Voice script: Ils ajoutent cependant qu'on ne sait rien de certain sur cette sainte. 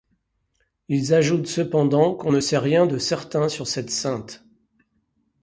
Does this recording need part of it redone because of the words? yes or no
no